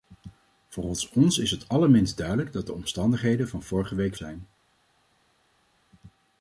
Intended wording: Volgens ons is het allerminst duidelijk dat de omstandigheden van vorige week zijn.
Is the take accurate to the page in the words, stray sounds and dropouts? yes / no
yes